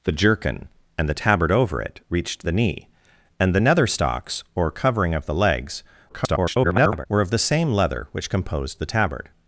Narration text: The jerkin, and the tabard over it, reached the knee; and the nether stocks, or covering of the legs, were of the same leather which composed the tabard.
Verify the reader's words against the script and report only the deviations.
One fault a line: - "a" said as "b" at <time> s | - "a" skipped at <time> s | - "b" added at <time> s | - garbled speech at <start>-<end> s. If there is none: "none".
- garbled speech at 6.1-7.1 s